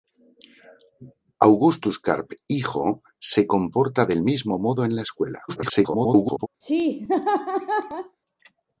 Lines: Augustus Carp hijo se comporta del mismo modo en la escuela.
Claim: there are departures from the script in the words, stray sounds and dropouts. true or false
true